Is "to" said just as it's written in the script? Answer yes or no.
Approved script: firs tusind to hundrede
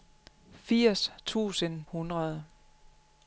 no